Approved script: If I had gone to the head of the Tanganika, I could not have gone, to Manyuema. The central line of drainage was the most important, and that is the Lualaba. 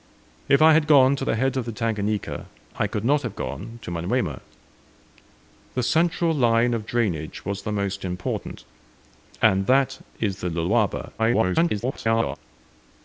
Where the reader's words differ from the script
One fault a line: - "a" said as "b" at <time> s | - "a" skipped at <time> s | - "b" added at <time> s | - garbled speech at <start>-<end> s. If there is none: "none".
- garbled speech at 11.2-12.4 s